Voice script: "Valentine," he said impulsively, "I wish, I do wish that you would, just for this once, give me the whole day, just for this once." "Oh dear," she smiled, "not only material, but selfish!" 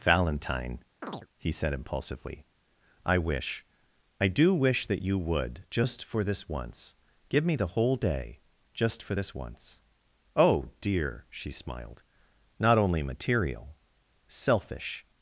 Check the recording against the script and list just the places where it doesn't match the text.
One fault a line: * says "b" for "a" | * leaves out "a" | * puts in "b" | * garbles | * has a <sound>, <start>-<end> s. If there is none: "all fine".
* has a chirp, 1.0-1.3 s
* leaves out "but"